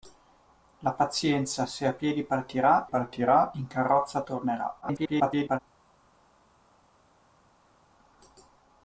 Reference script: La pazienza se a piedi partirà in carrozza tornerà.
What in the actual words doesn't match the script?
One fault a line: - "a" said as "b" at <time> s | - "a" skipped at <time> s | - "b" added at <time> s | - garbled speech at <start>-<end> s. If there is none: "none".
- "partirà" added at 2.8 s
- garbled speech at 4.8-5.6 s